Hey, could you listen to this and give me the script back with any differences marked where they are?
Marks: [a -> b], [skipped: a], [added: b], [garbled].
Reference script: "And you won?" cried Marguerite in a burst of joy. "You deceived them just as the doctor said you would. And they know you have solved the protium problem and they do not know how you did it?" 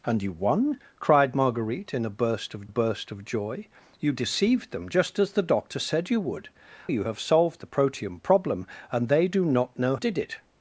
"And you won?" cried Marguerite in a burst of [added: burst of] joy. "You deceived them just as the doctor said you would. [skipped: And they know] you have solved the protium problem and they do not know [skipped: how you] did it?"